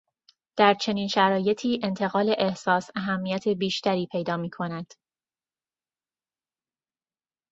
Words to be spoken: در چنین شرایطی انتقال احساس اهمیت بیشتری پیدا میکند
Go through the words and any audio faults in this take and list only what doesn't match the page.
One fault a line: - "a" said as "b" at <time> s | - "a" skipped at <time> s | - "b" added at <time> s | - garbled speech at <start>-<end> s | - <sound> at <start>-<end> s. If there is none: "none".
none